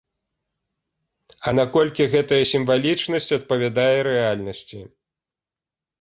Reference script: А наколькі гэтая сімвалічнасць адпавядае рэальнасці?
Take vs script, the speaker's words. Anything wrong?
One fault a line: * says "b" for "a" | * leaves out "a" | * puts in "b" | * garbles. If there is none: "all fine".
all fine